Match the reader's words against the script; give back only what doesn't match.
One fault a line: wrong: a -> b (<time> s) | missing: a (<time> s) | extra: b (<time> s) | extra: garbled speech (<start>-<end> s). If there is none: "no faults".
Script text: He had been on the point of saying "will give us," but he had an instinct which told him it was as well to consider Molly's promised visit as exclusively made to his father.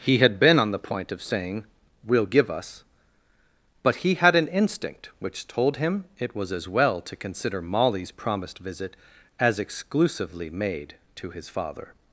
no faults